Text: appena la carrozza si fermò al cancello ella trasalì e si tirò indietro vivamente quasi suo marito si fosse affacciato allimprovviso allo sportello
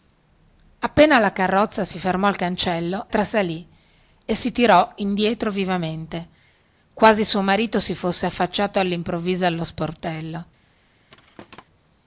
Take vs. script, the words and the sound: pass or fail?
fail